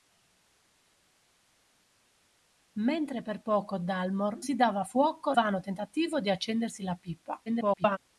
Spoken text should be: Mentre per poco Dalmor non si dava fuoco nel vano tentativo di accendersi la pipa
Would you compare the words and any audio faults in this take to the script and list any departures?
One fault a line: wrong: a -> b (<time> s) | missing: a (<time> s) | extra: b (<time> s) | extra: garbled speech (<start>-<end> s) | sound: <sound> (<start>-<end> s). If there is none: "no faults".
missing: non (4.4 s)
missing: nel (5.4 s)
extra: garbled speech (7.5-8.0 s)